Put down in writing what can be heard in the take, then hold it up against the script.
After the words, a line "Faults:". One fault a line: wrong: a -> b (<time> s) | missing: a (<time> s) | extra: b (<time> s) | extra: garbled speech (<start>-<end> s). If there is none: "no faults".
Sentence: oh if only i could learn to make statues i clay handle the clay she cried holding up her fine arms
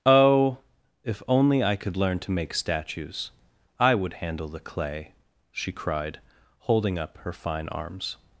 oh if only i could learn to make statues i would handle the clay she cried holding up her fine arms
Faults:
wrong: clay -> would (4.0 s)